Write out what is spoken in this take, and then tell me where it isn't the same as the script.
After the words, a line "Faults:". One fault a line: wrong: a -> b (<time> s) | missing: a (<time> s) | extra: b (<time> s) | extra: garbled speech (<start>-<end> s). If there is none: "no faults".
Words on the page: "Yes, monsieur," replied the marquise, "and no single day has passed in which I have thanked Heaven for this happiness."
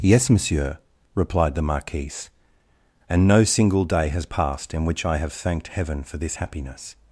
"Yes, monsieur," replied the marquise, "and no single day has passed in which I have thanked Heaven for this happiness."
Faults:
no faults